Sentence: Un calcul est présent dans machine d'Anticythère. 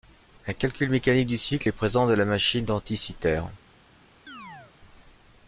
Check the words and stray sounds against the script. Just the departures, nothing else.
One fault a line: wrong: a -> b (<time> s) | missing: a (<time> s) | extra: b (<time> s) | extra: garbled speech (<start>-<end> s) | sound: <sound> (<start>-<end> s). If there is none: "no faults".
extra: mécanique du cycle (0.9 s)
extra: la (2.1 s)
sound: chirp (4.3-4.7 s)